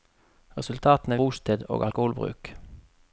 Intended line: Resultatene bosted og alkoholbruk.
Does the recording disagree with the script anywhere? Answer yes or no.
no